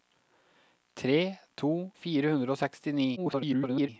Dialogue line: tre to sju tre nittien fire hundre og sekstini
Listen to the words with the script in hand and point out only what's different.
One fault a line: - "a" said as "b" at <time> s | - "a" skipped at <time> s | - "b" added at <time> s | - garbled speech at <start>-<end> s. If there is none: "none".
- "sju tre nittien" skipped at 1.9 s
- garbled speech at 3.2-3.9 s